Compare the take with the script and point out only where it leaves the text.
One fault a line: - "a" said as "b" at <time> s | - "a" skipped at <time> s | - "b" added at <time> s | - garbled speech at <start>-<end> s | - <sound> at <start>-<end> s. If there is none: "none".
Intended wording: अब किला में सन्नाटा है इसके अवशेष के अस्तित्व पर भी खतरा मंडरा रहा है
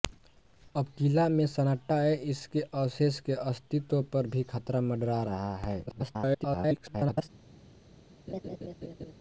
- garbled speech at 5.9-7.3 s
- laugh at 8.3-9.1 s